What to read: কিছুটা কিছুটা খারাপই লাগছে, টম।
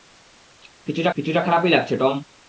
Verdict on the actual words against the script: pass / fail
pass